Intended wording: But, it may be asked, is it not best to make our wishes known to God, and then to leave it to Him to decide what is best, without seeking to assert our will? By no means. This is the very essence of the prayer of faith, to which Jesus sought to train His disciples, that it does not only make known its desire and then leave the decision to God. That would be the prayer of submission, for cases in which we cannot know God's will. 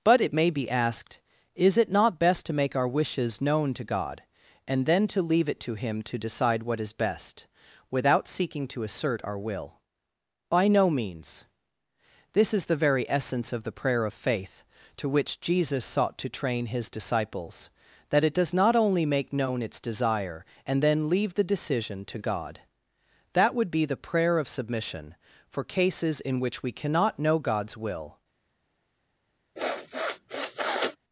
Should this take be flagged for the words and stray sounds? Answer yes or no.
yes